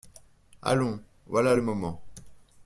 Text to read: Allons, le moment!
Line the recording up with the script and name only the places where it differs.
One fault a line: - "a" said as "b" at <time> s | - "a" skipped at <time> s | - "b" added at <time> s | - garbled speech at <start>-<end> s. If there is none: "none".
- "voilà" added at 1.3 s